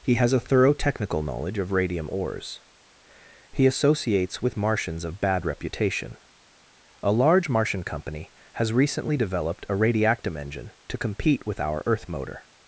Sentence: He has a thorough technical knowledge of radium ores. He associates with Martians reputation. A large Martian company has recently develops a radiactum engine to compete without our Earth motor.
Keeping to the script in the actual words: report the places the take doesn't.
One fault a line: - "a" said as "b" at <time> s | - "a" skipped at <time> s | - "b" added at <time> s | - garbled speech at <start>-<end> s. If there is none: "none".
- "of bad" added at 5.0 s
- "develops" said as "developed" at 9.1 s
- "without" said as "with" at 11.5 s